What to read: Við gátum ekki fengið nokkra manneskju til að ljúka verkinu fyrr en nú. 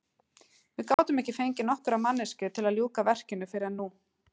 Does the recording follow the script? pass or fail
pass